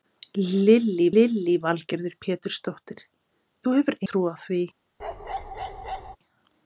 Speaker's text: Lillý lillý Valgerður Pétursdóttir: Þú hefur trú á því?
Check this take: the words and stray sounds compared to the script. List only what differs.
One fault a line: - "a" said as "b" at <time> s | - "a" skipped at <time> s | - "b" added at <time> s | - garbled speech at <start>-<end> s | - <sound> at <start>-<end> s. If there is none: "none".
- bark at 5.0-6.2 s